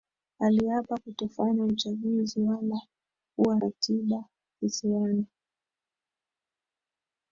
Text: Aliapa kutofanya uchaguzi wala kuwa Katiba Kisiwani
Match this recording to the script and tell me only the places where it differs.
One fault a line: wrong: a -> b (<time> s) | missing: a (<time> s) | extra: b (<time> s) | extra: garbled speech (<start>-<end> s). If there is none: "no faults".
no faults